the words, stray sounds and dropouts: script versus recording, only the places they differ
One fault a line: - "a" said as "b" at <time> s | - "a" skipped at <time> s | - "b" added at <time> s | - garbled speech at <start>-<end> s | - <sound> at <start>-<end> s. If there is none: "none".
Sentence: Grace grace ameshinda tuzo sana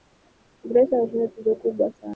- "grace" skipped at 0.9 s
- "kubwa" added at 1.6 s